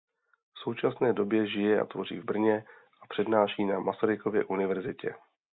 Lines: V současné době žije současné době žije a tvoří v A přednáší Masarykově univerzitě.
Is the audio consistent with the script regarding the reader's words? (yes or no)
no